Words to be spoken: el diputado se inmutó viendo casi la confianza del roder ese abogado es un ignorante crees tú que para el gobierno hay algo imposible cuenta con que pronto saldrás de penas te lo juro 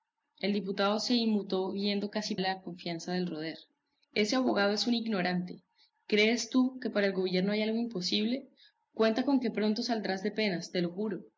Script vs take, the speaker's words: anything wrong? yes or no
no